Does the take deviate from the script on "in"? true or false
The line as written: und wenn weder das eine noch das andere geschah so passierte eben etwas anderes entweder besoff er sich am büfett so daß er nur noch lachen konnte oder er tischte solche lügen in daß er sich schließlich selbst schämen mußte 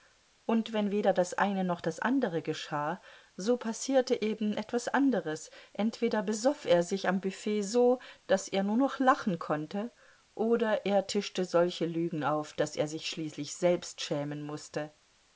true